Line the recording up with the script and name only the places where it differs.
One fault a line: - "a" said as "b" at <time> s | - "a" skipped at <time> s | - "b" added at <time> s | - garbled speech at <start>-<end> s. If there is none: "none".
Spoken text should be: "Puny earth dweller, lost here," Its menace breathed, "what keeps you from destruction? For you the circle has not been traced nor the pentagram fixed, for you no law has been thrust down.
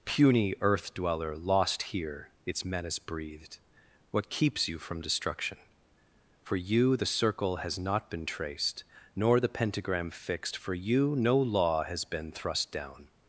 none